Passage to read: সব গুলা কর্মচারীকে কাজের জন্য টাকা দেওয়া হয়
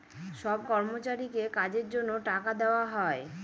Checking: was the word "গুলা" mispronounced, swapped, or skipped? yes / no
yes